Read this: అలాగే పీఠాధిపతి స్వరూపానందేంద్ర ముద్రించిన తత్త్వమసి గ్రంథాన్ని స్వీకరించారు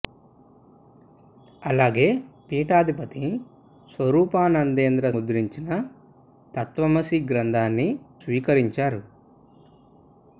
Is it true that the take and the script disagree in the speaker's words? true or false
false